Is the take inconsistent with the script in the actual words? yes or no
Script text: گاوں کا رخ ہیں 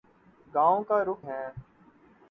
no